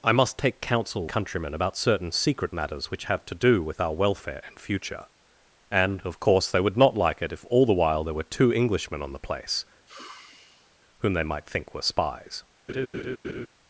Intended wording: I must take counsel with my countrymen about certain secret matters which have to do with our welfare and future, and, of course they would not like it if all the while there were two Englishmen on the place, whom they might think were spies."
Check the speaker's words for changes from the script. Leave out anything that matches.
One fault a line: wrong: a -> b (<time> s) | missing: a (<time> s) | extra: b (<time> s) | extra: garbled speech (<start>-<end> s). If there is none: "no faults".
missing: with my (1.1 s)